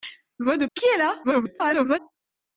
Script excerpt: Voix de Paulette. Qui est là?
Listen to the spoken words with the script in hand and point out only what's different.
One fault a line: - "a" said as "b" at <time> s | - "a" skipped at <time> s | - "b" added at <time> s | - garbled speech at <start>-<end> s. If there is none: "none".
- "Paulette" skipped at 0.7 s
- garbled speech at 1.2-2.0 s